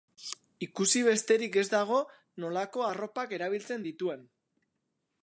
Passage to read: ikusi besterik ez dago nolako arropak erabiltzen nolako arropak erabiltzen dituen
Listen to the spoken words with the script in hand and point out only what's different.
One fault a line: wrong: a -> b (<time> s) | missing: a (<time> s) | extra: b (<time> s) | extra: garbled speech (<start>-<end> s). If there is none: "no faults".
missing: nolako arropak erabiltzen (3.9 s)